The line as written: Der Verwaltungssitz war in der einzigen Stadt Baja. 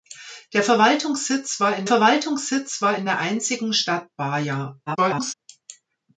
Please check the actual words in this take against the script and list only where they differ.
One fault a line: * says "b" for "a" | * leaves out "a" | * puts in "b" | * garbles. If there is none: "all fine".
* puts in "Verwaltungssitz war in"
* garbles